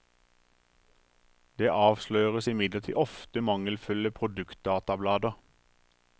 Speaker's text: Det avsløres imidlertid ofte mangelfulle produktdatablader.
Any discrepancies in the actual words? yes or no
no